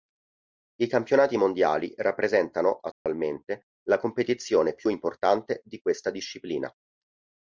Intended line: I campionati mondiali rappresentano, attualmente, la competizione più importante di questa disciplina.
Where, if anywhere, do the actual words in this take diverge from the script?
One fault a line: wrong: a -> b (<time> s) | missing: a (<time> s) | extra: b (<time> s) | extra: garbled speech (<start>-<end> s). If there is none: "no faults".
no faults